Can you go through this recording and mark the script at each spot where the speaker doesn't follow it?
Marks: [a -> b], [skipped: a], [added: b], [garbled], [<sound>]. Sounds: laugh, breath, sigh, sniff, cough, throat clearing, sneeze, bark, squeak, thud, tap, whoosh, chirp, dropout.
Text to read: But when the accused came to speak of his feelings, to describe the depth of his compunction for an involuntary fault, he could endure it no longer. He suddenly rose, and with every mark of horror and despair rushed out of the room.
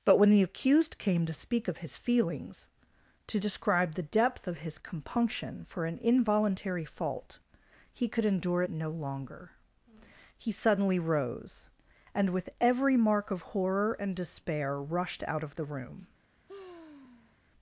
But when the accused came to speak of his feelings, to describe the depth of his compunction for an involuntary fault, he could endure it no longer. He suddenly rose, and with every mark of horror and despair rushed out of the room. [sigh]